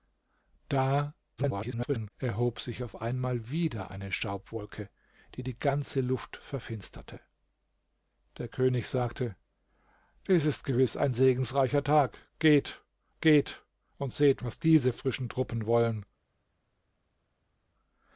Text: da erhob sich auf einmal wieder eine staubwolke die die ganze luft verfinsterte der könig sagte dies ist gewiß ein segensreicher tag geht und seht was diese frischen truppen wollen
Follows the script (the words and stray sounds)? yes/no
no